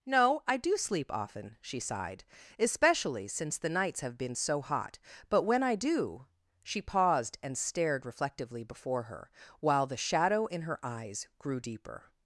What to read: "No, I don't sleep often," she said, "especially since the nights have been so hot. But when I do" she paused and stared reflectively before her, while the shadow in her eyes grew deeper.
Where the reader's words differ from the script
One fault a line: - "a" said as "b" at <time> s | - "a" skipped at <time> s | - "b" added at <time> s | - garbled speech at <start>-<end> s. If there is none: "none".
- "don't" said as "do" at 0.6 s
- "said" said as "sighed" at 1.8 s